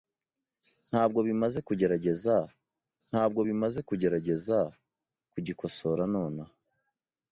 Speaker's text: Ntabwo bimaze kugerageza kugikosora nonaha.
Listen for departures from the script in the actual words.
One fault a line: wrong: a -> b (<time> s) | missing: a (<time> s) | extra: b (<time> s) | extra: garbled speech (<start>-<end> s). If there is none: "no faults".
extra: ntabwo bimaze kugerageza (3.1 s)